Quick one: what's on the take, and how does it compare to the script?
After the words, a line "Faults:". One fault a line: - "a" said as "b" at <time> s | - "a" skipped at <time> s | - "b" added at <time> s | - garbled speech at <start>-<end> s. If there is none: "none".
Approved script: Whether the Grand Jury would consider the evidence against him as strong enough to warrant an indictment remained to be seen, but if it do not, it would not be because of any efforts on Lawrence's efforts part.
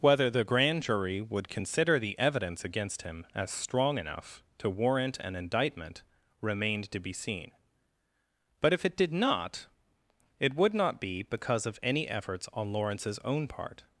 Whether the Grand Jury would consider the evidence against him as strong enough to warrant an indictment remained to be seen, but if it did not, it would not be because of any efforts on Lawrence's own part.
Faults:
- "do" said as "did" at 9.0 s
- "efforts" said as "own" at 13.2 s